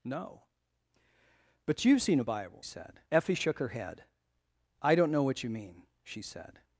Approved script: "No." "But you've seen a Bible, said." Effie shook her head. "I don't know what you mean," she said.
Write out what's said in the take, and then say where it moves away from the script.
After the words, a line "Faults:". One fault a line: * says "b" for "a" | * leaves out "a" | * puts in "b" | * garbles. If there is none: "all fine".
"No." "But you've seen a Bible, said." Effie shook her head. "I don't know what you mean," she said.
Faults:
all fine